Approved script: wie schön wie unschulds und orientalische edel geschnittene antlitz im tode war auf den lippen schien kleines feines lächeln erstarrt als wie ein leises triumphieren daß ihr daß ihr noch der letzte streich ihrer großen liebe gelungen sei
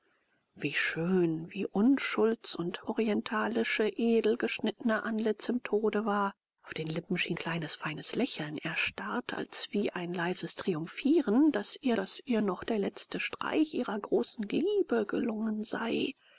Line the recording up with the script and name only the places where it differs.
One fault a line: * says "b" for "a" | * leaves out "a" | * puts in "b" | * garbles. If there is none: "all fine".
all fine